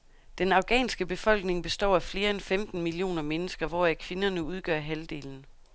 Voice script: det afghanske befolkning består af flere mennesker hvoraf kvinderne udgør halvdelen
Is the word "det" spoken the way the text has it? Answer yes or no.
no